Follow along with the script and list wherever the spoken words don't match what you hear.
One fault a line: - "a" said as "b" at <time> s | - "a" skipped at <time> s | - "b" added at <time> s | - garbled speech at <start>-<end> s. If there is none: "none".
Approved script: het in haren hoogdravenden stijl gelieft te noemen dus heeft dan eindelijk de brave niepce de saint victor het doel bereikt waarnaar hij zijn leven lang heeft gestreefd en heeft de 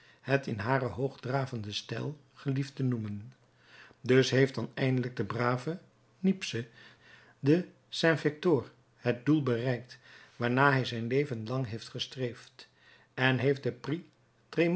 none